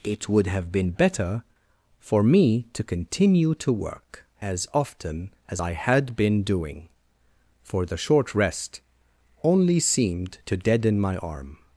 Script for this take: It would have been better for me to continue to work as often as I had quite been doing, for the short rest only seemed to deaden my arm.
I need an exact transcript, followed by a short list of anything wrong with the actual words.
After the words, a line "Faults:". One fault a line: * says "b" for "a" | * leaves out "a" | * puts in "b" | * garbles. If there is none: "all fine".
It would have been better for me to continue to work as often as I had been doing, for the short rest only seemed to deaden my arm.
Faults:
* leaves out "quite"